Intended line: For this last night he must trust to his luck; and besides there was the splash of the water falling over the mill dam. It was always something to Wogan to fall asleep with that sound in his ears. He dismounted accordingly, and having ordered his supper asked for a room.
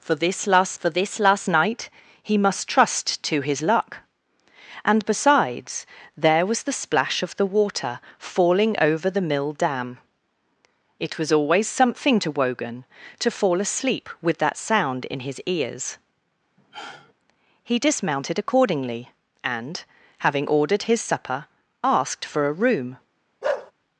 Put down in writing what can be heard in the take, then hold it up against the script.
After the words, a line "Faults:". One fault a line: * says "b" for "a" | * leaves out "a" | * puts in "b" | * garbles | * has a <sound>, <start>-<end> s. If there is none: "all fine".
For this last for this last night he must trust to his luck; and besides there was the splash of the water falling over the mill dam. It was always something to Wogan to fall asleep with that sound in his ears. He dismounted accordingly, and having ordered his supper asked for a room.
Faults:
* puts in "for this last"
* has a sigh, 16.6-17.1 s
* has a bark, 23.4-23.7 s